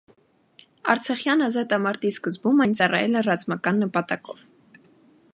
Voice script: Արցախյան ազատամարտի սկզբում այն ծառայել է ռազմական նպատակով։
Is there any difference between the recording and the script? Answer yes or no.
no